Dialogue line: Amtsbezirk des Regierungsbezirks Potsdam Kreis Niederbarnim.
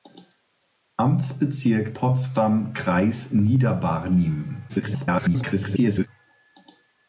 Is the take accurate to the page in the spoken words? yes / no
no